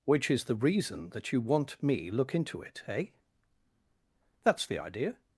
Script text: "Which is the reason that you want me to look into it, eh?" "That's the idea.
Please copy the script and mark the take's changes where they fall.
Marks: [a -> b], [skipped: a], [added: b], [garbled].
"Which is the reason that you want me [skipped: to] look into it, eh?" "That's the idea.